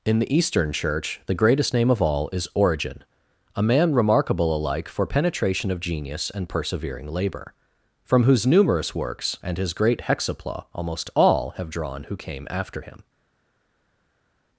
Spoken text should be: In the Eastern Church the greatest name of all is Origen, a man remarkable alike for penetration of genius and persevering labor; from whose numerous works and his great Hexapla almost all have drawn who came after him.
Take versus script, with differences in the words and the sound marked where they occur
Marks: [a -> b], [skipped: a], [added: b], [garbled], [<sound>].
In the Eastern Church the greatest name of all is Origen, a man remarkable alike for penetration of genius and persevering labor; from whose numerous works and his great Hexapla almost all have drawn who came after him.